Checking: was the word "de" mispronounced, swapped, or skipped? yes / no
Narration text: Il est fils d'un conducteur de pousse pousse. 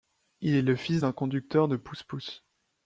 no